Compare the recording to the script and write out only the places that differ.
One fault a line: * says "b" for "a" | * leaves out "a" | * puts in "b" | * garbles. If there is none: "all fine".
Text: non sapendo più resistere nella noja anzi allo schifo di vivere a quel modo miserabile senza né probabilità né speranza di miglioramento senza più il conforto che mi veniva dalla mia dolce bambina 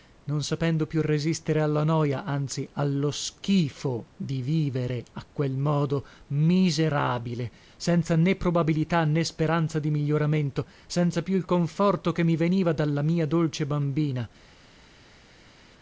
* says "alla" for "nella"